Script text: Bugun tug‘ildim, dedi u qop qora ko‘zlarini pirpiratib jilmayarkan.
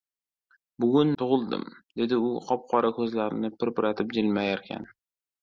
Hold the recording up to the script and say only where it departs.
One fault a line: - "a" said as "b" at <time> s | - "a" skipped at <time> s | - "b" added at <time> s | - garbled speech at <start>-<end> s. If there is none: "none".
none